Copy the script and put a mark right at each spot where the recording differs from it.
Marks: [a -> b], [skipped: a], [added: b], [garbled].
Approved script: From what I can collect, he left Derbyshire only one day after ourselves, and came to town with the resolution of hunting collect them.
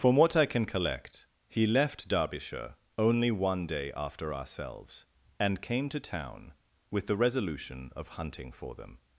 From what I can collect, he left Derbyshire only one day after ourselves, and came to town with the resolution of hunting [collect -> for] them.